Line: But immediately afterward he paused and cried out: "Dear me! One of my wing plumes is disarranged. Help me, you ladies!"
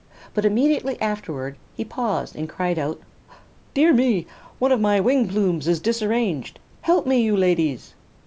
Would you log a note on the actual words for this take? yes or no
no